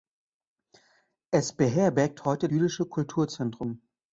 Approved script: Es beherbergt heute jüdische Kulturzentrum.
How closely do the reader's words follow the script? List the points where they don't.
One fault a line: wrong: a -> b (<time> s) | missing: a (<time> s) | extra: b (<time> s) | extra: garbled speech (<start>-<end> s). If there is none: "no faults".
no faults